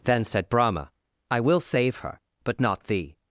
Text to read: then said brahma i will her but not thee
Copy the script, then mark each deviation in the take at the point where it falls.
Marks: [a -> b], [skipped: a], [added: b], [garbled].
then said brahma i will [added: save] her but not thee